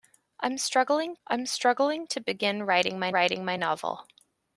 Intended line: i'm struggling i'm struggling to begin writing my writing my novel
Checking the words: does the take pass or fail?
pass